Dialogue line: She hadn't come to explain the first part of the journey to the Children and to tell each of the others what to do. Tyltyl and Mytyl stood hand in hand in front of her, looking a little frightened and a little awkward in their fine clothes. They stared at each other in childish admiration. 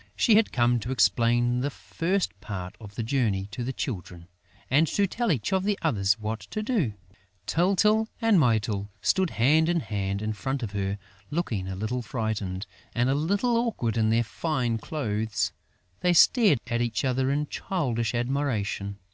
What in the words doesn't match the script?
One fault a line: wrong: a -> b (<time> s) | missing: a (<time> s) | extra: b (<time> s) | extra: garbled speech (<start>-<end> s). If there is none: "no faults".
wrong: hadn't -> had (0.4 s)